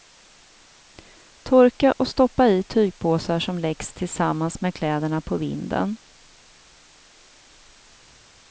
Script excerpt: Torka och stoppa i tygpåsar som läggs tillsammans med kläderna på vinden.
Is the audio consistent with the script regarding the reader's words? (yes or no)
yes